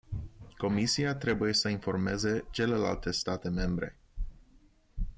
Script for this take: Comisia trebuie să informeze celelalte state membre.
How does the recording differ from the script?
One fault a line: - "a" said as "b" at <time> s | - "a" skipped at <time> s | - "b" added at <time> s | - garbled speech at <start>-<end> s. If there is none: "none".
none